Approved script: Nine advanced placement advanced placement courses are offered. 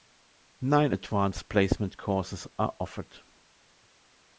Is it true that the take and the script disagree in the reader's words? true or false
true